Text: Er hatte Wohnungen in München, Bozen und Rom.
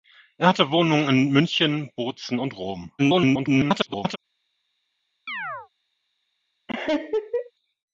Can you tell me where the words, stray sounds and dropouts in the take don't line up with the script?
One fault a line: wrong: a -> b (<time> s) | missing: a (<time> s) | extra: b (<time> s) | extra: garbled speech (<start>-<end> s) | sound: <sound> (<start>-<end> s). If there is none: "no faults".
extra: garbled speech (3.0-4.2 s)
sound: chirp (5.3-5.7 s)
sound: laugh (6.7-7.5 s)